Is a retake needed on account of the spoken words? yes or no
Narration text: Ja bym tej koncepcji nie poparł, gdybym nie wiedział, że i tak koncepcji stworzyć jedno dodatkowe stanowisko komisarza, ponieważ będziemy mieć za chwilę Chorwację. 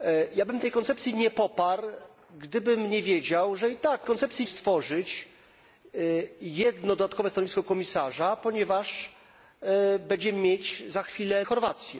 no